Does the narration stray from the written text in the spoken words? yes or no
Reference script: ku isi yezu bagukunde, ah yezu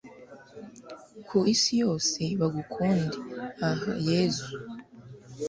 yes